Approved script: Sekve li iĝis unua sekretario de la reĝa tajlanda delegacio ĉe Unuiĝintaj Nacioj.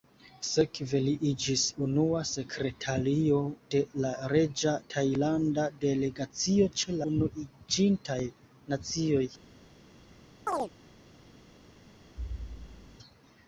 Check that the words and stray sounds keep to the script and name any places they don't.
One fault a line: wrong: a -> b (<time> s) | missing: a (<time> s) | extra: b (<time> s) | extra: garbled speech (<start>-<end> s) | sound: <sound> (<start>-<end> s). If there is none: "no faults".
sound: chirp (10.5-10.7 s)
sound: thud (12.2-13.0 s)